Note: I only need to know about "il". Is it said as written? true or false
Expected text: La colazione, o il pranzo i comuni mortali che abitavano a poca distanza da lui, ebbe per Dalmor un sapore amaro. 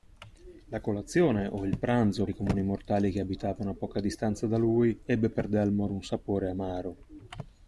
true